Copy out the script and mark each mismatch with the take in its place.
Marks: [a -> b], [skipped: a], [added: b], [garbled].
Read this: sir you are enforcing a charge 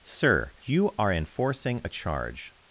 sir you are enforcing a charge